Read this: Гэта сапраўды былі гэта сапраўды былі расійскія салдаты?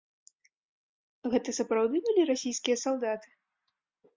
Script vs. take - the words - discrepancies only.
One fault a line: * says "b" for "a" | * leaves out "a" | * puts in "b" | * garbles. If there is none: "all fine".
* leaves out "гэта сапраўды былі"